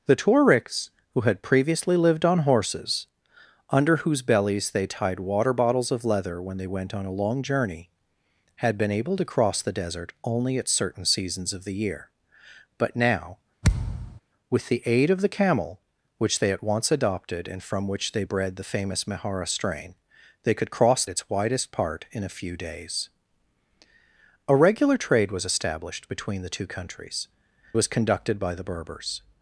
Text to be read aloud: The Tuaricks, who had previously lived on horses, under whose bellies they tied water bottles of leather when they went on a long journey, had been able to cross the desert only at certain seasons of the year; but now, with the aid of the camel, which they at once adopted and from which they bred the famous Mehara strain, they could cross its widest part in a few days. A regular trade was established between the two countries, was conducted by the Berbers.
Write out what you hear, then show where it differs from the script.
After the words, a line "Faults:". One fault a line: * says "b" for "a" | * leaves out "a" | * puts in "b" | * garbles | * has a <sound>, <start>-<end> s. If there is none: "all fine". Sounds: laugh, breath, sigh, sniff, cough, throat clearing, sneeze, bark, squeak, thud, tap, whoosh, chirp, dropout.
The Tuaricks, who had previously lived on horses, under whose bellies they tied water bottles of leather when they went on a long journey, had been able to cross the desert only at certain seasons of the year; but now, with the aid of the camel, which they at once adopted and from which they bred the famous Mehara strain, they could cross its widest part in a few days. A regular trade was established between the two countries, was conducted by the Berbers.
Faults:
* has a thud, 13.6-14.2 s